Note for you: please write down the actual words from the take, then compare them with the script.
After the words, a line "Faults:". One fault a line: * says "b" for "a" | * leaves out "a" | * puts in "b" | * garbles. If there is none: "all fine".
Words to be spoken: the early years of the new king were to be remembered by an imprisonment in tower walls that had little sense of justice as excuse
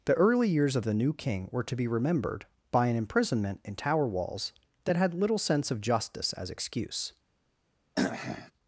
the early years of the new king were to be remembered by an imprisonment in tower walls that had little sense of justice as excuse
Faults:
all fine